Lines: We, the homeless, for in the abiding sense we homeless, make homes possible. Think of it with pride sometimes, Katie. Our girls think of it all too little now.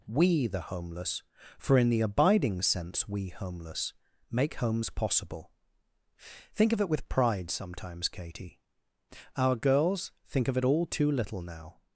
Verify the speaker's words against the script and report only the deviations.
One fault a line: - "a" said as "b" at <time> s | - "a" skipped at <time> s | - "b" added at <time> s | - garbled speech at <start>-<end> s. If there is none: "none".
none